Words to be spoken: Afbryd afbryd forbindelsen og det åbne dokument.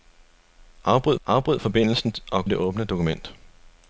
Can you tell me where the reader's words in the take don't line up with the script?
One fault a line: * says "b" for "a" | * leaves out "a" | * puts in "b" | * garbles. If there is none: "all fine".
all fine